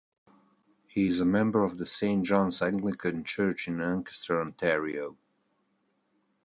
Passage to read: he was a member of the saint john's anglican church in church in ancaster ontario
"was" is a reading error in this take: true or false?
true